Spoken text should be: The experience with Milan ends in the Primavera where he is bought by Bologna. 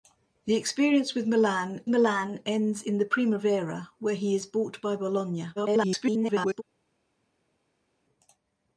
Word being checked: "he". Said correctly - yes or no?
yes